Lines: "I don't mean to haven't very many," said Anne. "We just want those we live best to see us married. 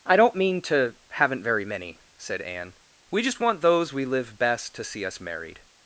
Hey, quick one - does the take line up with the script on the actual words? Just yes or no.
yes